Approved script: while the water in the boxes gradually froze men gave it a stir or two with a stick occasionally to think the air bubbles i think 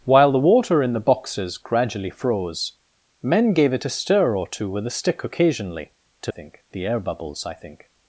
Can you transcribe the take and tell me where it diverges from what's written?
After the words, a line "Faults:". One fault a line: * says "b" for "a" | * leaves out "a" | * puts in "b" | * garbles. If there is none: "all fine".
while the water in the boxes gradually froze men gave it a stir or two with a stick occasionally to think the air bubbles i think
Faults:
all fine